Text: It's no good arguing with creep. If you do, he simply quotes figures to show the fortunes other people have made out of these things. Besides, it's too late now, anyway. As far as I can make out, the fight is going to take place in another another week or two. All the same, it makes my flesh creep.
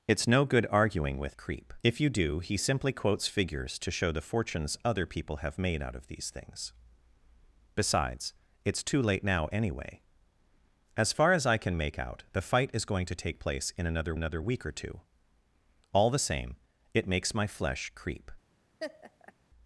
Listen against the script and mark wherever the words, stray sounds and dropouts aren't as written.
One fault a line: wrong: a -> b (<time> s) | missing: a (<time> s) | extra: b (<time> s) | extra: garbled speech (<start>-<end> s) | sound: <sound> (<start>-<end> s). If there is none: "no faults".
sound: laugh (18.8-19.3 s)